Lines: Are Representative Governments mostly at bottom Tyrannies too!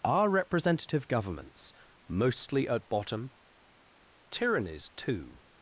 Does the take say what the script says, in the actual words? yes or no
yes